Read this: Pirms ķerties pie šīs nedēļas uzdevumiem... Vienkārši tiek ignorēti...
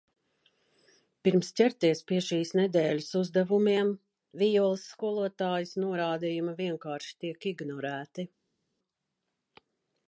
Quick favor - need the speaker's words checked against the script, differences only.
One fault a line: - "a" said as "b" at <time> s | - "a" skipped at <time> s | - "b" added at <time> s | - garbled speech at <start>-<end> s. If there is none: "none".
- "Vijoles skolotājas norādījumi" added at 4.4 s